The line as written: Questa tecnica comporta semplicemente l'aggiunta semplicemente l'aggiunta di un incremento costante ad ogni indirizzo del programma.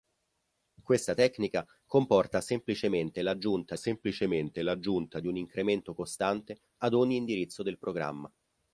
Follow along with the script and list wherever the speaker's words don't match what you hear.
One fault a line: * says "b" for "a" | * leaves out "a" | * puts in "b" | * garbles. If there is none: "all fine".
all fine